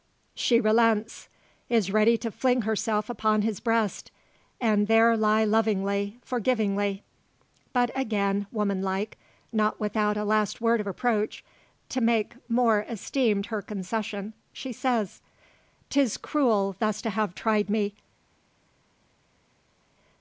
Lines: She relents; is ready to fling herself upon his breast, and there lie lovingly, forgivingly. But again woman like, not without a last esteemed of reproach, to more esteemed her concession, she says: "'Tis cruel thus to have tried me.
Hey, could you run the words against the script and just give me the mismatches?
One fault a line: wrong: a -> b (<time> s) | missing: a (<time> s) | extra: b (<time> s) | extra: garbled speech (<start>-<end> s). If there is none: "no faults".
wrong: esteemed -> word (10.6 s)
extra: make (12.0 s)